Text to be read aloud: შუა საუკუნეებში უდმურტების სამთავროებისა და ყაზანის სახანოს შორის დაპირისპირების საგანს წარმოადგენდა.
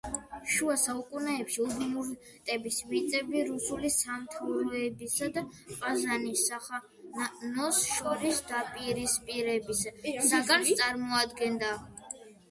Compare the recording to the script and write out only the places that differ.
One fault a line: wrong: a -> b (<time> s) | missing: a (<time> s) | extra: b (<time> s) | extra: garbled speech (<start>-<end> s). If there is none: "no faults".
extra: მიწები რუსული (2.9 s)